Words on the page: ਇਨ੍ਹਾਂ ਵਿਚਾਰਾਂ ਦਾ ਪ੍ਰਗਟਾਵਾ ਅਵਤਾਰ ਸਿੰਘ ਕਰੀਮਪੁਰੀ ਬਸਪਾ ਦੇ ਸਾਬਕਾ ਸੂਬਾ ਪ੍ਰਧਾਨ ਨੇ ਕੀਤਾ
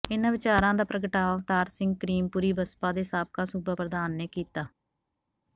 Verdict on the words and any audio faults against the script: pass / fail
pass